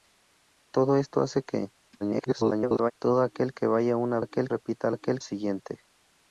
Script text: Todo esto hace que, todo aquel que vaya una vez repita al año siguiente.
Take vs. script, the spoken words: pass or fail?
fail